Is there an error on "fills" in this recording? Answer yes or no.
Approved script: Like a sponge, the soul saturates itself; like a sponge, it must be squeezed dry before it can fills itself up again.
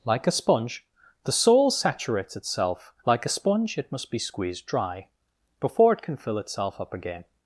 yes